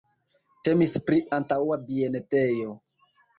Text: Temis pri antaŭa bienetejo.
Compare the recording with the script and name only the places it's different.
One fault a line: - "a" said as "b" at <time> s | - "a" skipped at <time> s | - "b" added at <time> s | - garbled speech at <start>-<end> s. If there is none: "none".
none